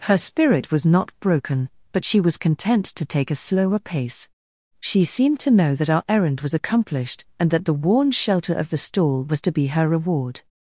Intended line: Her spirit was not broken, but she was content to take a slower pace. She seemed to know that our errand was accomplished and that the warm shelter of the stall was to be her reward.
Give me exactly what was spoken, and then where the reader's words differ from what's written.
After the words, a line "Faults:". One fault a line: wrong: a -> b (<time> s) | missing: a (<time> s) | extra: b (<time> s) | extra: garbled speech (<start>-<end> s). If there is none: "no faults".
Her spirit was not broken, but she was content to take a slower pace. She seemed to know that our errand was accomplished and that the worn shelter of the stall was to be her reward.
Faults:
wrong: warm -> worn (7.7 s)